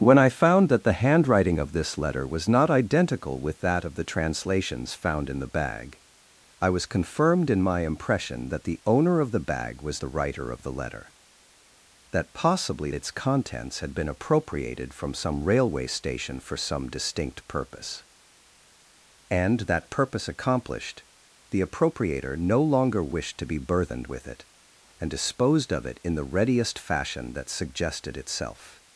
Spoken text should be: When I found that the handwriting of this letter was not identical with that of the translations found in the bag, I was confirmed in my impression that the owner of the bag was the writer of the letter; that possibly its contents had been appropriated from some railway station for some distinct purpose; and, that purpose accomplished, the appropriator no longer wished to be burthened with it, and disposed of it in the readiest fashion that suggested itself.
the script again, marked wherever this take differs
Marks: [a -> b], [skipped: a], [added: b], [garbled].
When I found that the handwriting of this letter was not identical with that of the translations found in the bag, I was confirmed in my impression that the owner of the bag was the writer of the letter; that possibly its contents had been appropriated from some railway station for some distinct purpose; and, that purpose accomplished, the appropriator no longer wished to be burthened with it, and disposed of it in the readiest fashion that suggested itself.